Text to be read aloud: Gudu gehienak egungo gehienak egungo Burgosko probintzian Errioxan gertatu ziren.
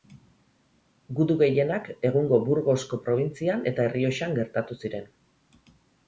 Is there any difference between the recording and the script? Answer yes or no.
yes